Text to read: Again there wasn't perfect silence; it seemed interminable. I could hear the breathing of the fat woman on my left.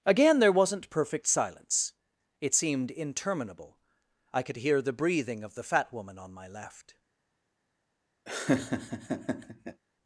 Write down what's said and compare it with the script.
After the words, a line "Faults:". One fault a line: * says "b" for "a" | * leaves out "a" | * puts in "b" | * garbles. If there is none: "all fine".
Again there wasn't perfect silence; it seemed interminable. I could hear the breathing of the fat woman on my left.
Faults:
all fine